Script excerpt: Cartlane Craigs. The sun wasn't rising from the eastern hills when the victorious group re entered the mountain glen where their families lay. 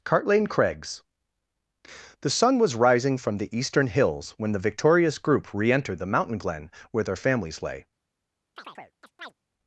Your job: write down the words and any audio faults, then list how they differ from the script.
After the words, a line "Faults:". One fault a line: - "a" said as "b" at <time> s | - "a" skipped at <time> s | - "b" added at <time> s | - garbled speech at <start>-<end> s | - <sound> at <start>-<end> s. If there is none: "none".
Cartlane Craigs. The sun was rising from the eastern hills when the victorious group re entered the mountain glen where their families lay.
Faults:
- "wasn't" said as "was" at 2.6 s
- chirp at 8.6-9.3 s